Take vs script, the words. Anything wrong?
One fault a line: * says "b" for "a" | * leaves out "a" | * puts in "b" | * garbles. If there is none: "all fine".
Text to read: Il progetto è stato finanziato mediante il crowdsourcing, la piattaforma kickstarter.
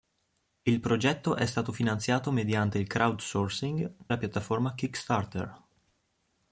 all fine